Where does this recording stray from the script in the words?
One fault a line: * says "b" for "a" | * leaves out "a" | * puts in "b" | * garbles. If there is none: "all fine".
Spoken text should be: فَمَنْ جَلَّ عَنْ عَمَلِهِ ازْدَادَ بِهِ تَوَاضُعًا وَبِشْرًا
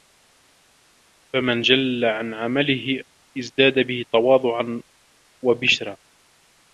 all fine